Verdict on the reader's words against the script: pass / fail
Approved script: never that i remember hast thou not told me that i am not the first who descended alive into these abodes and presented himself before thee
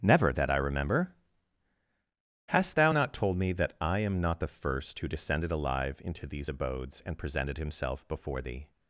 pass